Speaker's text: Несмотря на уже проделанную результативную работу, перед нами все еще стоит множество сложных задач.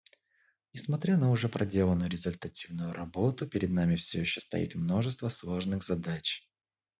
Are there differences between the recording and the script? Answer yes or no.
no